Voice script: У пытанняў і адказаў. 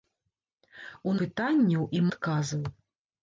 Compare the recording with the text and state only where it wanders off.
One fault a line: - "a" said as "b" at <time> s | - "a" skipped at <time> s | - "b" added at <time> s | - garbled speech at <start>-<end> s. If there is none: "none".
none